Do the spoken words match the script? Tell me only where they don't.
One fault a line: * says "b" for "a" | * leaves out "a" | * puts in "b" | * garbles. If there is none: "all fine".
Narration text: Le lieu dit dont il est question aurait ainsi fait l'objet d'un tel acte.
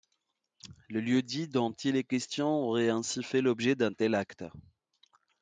all fine